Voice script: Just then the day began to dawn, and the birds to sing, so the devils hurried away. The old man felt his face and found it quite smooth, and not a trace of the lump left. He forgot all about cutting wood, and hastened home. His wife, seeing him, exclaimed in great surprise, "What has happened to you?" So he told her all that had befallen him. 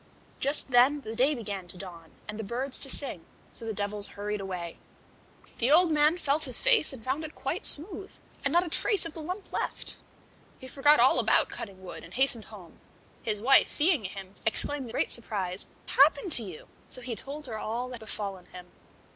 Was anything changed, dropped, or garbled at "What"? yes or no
yes